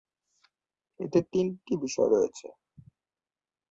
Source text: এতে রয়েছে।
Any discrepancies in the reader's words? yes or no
yes